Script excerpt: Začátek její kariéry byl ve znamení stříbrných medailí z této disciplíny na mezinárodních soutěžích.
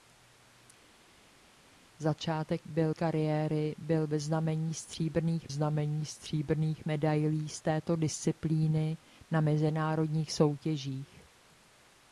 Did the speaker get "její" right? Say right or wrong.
wrong